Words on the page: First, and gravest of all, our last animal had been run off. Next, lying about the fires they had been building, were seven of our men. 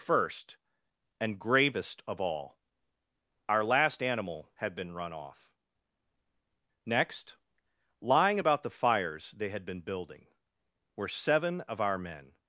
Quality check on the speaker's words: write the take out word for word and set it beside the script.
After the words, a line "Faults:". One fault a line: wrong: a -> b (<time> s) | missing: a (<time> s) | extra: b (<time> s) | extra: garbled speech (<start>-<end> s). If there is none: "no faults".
First, and gravest of all, our last animal had been run off. Next, lying about the fires they had been building, were seven of our men.
Faults:
no faults